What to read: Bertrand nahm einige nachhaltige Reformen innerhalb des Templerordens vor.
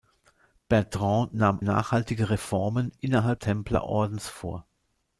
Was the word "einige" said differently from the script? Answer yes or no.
yes